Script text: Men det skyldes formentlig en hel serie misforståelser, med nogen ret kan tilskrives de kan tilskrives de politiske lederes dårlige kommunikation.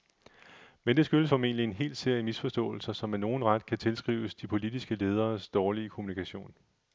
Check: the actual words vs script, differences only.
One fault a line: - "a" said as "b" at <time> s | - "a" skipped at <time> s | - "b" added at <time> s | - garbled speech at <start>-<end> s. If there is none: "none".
- "som" added at 2.9 s
- "kan tilskrives de" skipped at 4.5 s